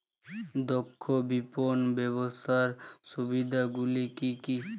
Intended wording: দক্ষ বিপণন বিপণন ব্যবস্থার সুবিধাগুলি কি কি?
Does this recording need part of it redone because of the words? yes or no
yes